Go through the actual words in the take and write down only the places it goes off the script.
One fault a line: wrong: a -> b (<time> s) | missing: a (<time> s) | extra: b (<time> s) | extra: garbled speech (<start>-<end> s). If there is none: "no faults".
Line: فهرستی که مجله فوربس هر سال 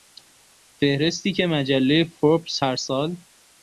no faults